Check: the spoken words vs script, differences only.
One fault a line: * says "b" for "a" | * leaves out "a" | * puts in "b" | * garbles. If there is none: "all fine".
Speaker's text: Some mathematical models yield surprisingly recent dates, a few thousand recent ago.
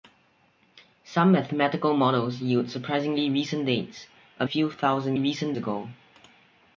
all fine